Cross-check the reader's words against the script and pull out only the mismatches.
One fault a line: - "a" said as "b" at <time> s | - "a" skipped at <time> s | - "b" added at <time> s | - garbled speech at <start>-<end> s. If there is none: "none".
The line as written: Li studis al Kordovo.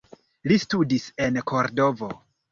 - "al" said as "en" at 1.3 s